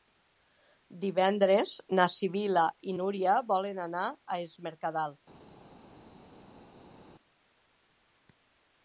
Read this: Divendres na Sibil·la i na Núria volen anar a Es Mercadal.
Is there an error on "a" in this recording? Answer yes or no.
no